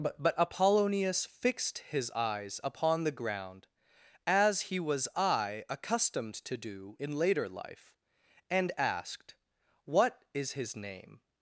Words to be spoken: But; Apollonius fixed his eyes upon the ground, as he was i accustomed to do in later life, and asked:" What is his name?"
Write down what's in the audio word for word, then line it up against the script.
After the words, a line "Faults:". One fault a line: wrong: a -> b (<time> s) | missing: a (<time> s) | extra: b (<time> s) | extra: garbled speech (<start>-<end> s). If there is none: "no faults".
But; but Apollonius fixed his eyes upon the ground, as he was i accustomed to do in later life, and asked:" What is his name?"
Faults:
extra: but (0.2 s)